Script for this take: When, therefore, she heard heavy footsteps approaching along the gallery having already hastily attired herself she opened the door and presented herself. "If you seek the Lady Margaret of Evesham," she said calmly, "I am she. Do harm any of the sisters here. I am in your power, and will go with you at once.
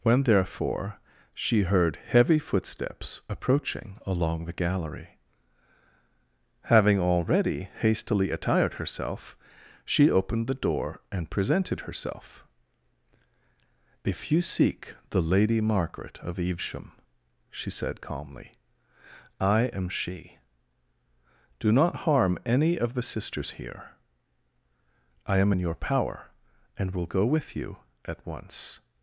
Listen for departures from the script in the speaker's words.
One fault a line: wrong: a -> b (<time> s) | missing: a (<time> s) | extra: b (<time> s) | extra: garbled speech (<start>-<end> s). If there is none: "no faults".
extra: not (21.7 s)